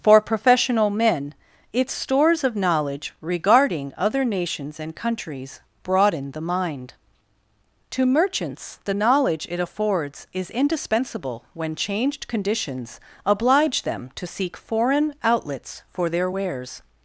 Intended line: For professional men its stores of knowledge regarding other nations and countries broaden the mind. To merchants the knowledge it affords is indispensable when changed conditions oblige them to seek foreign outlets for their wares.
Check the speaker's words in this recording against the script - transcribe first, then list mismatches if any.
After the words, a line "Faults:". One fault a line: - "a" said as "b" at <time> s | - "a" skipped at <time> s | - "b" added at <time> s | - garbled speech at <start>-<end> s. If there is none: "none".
For professional men its stores of knowledge regarding other nations and countries broaden the mind. To merchants the knowledge it affords is indispensable when changed conditions oblige them to seek foreign outlets for their wares.
Faults:
none